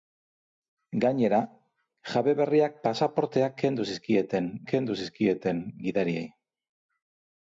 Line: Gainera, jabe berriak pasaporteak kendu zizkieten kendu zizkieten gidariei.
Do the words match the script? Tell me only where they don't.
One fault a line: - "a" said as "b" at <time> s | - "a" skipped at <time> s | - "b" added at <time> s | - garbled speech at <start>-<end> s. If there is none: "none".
none